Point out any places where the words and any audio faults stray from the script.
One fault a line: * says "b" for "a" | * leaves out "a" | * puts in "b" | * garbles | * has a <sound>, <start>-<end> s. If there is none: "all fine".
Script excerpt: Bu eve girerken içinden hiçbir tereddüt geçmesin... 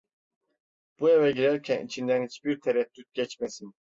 all fine